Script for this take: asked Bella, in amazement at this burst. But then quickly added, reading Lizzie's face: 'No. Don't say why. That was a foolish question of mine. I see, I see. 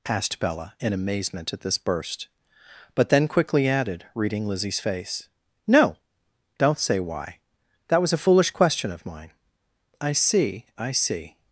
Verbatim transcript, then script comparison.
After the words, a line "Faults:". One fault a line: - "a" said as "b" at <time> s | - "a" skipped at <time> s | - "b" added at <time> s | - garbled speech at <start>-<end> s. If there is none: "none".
asked Bella, in amazement at this burst. But then quickly added, reading Lizzie's face: 'No. Don't say why. That was a foolish question of mine. I see, I see.
Faults:
none